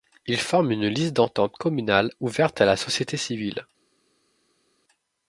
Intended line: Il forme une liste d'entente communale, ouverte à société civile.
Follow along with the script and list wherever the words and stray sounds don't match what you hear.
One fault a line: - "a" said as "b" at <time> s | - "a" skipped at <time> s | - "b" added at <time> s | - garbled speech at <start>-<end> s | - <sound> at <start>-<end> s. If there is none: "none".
- "la" added at 2.6 s